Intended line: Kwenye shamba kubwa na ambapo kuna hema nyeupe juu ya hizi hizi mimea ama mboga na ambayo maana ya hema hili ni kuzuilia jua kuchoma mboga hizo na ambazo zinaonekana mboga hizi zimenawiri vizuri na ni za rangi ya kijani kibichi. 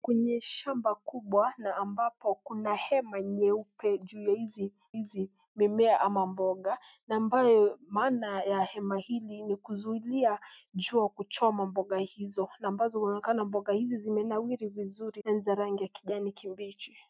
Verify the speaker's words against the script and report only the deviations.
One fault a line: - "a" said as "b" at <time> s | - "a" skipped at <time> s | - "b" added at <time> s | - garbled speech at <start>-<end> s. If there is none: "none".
none